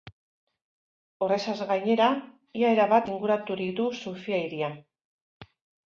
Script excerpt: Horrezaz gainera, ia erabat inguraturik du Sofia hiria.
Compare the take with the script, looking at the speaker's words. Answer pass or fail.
pass